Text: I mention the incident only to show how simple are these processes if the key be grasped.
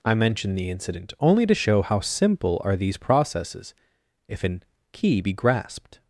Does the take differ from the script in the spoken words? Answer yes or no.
yes